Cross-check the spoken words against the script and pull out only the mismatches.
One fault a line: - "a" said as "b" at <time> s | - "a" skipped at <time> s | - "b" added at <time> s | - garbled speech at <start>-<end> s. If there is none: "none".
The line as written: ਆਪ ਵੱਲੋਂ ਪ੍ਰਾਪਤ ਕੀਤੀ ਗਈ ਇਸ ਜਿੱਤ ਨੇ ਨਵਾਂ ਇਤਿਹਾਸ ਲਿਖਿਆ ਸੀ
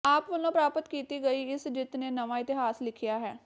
- "ਸੀ" said as "ਹੈ" at 3.2 s